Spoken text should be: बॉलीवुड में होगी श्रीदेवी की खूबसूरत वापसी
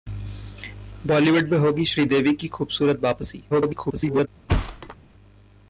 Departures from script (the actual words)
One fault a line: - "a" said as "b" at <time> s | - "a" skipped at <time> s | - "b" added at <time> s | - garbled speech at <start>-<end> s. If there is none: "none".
- garbled speech at 3.5-4.3 s